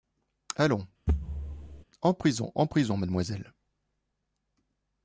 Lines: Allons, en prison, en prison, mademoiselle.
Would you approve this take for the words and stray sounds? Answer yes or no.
no